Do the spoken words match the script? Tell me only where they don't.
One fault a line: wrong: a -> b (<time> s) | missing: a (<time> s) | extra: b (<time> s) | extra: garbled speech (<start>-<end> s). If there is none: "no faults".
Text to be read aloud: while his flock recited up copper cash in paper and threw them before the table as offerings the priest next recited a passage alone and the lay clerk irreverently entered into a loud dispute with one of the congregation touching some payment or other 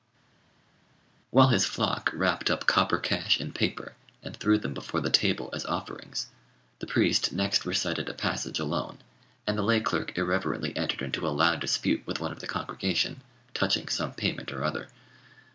wrong: recited -> wrapped (2.1 s)